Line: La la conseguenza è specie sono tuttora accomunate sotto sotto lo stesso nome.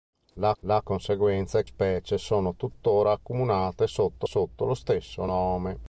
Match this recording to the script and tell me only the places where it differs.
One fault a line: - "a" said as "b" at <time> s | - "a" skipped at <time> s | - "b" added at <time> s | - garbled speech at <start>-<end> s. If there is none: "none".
none